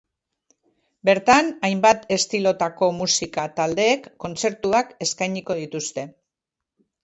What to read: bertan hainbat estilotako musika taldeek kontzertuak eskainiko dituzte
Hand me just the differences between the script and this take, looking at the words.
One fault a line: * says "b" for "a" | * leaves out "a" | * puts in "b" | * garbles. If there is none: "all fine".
all fine